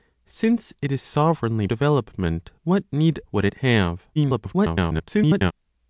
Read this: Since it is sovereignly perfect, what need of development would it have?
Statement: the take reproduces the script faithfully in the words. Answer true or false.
false